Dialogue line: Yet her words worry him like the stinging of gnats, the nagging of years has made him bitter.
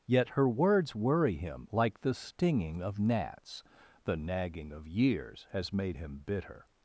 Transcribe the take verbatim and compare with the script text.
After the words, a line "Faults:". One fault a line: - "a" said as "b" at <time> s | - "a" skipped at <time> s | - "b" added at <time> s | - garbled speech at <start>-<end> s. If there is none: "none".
Yet her words worry him like the stinging of gnats, the nagging of years has made him bitter.
Faults:
none